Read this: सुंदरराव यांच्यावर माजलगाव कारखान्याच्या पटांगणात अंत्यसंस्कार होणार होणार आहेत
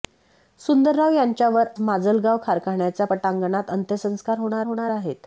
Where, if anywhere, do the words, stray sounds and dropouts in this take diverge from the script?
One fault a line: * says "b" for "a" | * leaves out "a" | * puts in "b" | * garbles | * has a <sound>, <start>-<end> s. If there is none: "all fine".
all fine